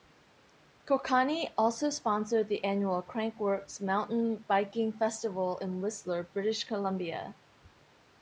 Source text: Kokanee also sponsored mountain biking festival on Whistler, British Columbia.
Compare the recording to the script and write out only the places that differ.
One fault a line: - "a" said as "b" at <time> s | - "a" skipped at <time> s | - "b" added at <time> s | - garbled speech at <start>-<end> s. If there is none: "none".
- "the annual Crankworx" added at 2.5 s
- "on" said as "in" at 5.6 s